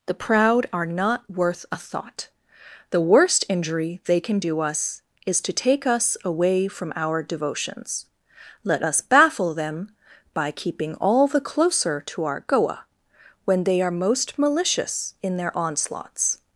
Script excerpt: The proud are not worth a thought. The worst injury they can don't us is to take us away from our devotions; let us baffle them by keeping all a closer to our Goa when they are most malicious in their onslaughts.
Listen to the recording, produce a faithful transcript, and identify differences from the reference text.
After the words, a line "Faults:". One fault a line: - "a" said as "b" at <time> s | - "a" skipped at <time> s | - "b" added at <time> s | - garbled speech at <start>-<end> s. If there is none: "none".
The proud are not worth a thought. The worst injury they can do us is to take us away from our devotions; let us baffle them by keeping all the closer to our Goa when they are most malicious in their onslaughts.
Faults:
- "don't" said as "do" at 4.4 s
- "a" said as "the" at 11.3 s